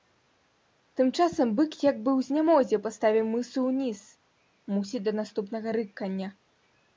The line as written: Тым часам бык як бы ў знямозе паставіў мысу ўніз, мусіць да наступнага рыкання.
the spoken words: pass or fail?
pass